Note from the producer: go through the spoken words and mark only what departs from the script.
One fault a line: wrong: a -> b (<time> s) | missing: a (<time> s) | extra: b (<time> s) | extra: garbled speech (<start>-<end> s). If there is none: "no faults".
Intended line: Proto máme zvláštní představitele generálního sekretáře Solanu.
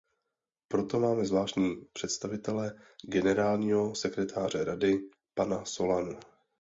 extra: Rady pana (4.6 s)